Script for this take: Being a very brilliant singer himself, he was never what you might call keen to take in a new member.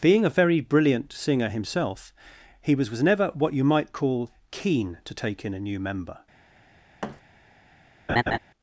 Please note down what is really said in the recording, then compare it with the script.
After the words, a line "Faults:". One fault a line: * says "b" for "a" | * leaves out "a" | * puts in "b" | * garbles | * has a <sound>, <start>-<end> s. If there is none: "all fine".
Being a very brilliant singer himself, he was was never what you might call keen to take in a new member.
Faults:
* puts in "was"
* has a thud, 7.0-7.2 s
* has a laugh, 8.1-8.4 s